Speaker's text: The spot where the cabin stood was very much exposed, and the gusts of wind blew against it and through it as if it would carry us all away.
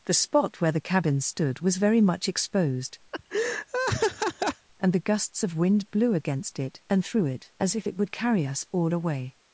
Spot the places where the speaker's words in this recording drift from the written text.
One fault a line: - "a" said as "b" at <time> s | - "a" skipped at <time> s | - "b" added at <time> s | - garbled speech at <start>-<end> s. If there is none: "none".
none